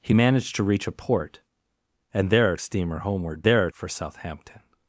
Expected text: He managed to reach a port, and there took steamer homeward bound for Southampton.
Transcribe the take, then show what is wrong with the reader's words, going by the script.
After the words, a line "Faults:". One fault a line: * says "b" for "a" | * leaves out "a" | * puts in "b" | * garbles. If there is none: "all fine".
He managed to reach a port, and there steamer homeward there for Southampton.
Faults:
* leaves out "took"
* says "there" for "bound"